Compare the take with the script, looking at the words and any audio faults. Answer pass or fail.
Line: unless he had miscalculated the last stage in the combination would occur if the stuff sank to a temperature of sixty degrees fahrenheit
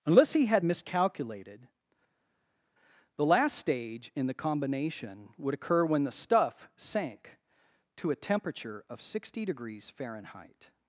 fail